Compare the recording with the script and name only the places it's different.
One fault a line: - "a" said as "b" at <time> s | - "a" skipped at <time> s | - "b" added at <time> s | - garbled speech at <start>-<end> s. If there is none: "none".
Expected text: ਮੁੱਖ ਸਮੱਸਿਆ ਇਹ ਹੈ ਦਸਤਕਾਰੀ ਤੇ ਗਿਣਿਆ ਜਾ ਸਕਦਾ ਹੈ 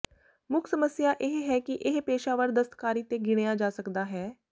- "ਕਿ ਇਹ ਪੇਸ਼ਾਵਰ" added at 1.6 s